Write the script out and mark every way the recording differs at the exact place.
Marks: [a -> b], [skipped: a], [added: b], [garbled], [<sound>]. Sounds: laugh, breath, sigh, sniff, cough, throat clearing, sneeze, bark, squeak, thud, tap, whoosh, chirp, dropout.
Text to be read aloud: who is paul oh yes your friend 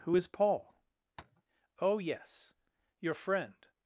who is paul [tap] oh yes your friend